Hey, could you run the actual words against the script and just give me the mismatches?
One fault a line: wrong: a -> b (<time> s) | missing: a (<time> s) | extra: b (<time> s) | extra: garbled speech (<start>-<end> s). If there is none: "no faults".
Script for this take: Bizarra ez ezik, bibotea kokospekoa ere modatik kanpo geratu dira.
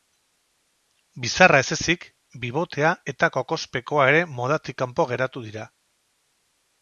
extra: eta (3.1 s)